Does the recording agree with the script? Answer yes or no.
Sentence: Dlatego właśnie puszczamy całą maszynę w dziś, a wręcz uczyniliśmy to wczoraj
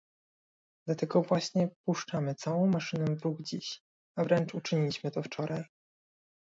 no